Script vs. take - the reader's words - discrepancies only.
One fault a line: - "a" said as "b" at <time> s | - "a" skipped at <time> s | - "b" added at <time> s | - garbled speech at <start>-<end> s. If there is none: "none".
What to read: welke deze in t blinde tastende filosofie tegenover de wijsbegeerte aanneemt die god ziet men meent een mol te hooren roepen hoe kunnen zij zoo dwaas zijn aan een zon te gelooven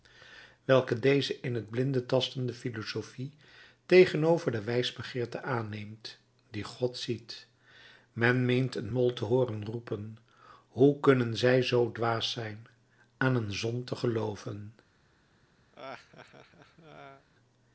none